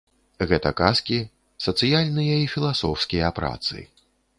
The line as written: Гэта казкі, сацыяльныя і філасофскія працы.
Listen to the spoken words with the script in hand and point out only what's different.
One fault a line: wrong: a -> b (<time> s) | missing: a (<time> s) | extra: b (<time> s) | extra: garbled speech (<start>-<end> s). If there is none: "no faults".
no faults